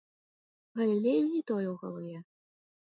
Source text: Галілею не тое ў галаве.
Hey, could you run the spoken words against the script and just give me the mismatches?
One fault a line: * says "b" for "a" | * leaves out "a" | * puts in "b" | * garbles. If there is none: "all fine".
all fine